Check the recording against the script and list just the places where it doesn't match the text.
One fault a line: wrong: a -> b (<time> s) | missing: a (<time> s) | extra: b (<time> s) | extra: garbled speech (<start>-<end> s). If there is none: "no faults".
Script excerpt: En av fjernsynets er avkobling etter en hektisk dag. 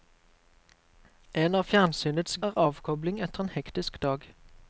no faults